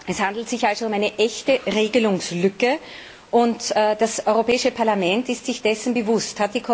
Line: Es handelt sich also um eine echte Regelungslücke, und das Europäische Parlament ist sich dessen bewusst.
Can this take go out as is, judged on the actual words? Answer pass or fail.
pass